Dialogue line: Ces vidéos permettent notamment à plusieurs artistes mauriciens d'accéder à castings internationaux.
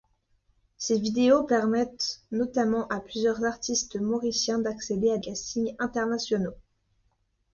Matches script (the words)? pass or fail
pass